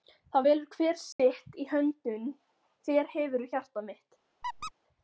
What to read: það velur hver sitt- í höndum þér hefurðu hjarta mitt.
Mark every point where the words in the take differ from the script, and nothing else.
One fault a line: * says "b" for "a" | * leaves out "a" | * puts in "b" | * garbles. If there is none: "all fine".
all fine